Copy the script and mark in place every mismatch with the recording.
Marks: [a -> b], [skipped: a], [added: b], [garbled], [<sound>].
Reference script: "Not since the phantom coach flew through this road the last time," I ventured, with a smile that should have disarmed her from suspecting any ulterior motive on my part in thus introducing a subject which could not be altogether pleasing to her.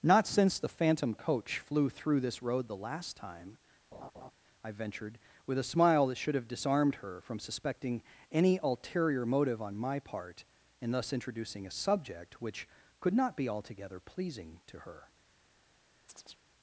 "Not since the phantom coach flew through this road the last time," [laugh] I ventured, with a smile that should have disarmed her from suspecting any ulterior motive on my part in thus introducing a subject which could not be altogether pleasing to her. [chirp]